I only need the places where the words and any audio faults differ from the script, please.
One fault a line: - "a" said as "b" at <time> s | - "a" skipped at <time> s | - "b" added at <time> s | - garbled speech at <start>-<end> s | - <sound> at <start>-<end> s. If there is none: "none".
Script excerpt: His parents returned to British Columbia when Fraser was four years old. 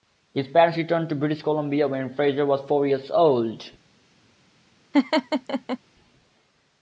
- laugh at 4.9-5.8 s